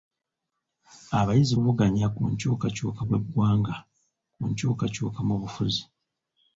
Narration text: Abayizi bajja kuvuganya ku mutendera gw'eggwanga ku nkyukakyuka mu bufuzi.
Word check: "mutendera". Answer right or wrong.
wrong